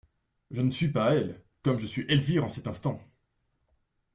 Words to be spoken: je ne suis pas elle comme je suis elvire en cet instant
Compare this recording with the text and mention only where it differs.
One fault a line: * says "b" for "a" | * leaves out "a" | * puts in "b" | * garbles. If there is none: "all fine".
all fine